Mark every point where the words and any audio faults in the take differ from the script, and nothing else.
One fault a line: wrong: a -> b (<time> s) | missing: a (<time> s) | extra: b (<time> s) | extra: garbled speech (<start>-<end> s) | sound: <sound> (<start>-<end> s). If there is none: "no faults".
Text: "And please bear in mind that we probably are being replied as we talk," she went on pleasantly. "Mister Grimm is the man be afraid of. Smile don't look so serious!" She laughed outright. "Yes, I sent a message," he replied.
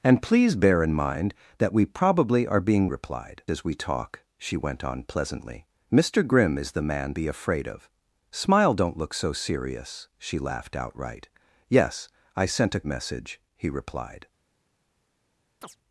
sound: chirp (15.6-15.8 s)